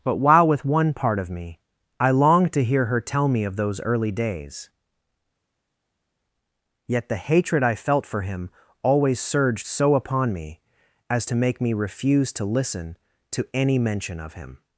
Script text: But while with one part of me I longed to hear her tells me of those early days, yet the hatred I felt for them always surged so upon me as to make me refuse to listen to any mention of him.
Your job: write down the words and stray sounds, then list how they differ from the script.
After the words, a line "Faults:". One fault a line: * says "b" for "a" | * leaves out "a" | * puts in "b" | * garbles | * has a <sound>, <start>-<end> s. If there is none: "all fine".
But while with one part of me I longed to hear her tell me of those early days, yet the hatred I felt for him always surged so upon me as to make me refuse to listen to any mention of him.
Faults:
* says "tell" for "tells"
* says "him" for "them"